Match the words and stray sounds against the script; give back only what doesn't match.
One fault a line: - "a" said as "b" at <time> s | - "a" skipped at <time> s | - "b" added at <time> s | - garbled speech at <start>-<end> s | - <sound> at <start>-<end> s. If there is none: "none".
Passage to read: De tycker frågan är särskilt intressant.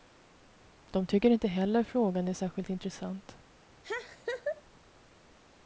- "inte heller" added at 1.3 s
- laugh at 3.8-4.6 s